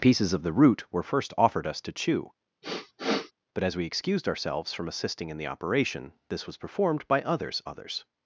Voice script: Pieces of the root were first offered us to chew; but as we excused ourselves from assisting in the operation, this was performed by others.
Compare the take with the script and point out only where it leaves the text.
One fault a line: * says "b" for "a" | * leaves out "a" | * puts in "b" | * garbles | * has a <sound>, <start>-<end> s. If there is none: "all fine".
* has a sniff, 2.6-3.3 s
* puts in "others"